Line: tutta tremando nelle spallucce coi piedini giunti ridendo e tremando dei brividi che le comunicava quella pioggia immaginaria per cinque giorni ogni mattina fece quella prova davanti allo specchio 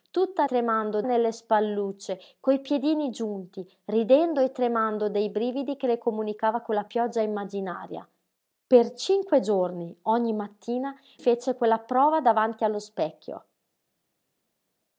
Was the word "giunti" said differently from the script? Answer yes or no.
no